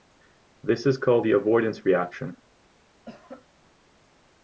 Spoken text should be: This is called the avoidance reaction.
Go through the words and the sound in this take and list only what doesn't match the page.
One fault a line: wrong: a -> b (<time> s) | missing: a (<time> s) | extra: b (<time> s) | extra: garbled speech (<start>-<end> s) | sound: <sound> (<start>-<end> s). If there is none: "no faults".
sound: cough (3.0-3.5 s)